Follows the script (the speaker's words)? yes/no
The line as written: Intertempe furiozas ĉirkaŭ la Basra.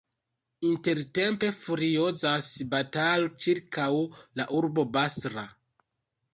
no